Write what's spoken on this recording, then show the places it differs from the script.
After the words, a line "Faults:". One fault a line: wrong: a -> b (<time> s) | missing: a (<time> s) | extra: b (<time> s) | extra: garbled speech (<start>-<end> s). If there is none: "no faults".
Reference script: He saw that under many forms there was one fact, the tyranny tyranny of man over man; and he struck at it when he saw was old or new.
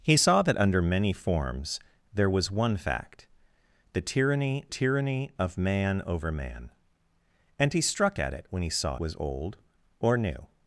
He saw that under many forms there was one fact, the tyranny tyranny of man over man; and he struck at it when he saw was old or new.
Faults:
no faults